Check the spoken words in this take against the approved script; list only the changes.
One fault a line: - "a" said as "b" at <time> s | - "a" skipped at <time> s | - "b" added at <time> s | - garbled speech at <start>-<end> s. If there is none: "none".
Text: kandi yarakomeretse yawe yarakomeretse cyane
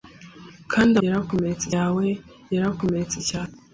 none